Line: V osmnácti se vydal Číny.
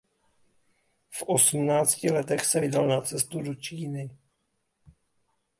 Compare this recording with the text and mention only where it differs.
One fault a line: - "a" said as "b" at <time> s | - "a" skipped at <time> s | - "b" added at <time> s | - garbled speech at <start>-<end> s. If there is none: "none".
- "letech" added at 2.1 s
- "na cestu do" added at 2.9 s